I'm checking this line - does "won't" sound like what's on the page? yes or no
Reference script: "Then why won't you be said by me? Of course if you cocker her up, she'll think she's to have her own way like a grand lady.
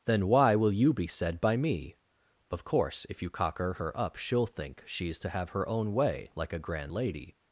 no